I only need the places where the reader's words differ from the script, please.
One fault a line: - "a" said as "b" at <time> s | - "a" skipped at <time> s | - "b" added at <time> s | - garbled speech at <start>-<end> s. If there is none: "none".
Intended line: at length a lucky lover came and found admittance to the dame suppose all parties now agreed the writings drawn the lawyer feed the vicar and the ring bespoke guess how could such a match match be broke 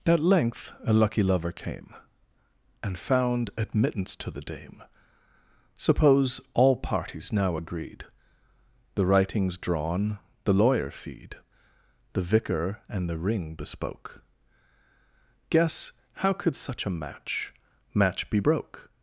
none